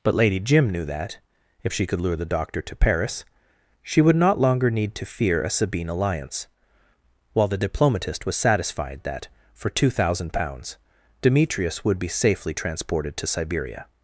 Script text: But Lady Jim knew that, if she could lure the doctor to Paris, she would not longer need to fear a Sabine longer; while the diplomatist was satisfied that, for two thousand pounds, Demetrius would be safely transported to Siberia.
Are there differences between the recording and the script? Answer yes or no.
yes